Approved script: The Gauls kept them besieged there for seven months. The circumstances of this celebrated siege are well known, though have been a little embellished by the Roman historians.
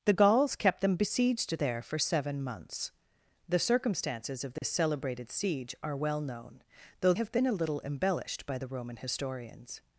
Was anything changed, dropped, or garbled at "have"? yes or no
no